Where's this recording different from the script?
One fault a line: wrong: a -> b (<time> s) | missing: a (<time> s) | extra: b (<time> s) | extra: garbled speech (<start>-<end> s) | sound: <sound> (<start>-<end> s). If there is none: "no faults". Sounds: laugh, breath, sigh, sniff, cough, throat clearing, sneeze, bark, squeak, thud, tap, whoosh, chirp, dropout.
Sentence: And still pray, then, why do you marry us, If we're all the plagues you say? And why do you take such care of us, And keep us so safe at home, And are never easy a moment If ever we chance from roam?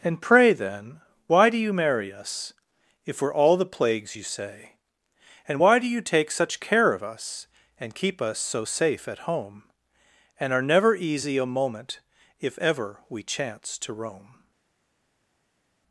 missing: still (0.2 s)
wrong: from -> to (13.8 s)